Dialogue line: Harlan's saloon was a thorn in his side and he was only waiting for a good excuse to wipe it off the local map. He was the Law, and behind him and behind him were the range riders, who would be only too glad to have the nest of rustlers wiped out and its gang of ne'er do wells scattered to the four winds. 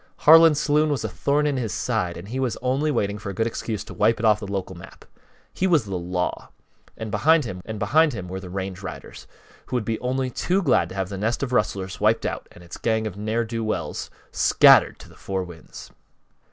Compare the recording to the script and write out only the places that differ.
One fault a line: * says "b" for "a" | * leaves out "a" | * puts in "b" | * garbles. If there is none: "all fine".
all fine